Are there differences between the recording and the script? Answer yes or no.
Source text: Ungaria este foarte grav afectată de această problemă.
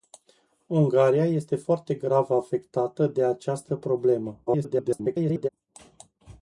yes